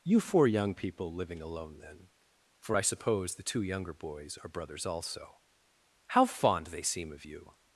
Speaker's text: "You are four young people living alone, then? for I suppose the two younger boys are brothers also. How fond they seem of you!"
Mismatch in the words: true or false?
true